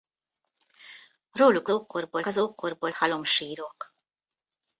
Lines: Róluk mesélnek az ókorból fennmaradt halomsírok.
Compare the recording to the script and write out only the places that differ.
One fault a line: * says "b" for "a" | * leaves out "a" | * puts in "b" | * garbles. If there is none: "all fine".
* says "ókorból" for "mesélnek"
* leaves out "fennmaradt"